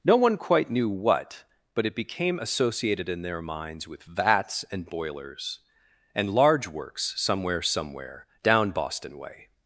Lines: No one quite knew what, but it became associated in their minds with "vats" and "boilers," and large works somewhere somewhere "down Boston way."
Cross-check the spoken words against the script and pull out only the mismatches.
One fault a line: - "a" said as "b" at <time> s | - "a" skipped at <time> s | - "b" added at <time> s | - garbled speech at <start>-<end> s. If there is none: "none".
none